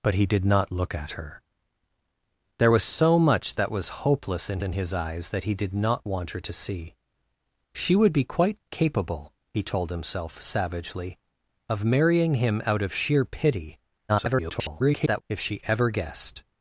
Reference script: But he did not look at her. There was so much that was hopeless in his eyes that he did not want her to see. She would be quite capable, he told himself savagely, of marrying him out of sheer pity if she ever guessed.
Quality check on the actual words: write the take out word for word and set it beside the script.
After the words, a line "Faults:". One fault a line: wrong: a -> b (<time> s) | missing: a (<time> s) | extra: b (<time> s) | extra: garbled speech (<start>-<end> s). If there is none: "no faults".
But he did not look at her. There was so much that was hopeless in in his eyes that he did not want her to see. She would be quite capable, he told himself savagely, of marrying him out of sheer pity [garbled] if she ever guessed.
Faults:
extra: in (4.6 s)
extra: garbled speech (14.1-15.2 s)